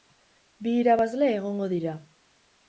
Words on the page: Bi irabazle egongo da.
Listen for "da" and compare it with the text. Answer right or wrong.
wrong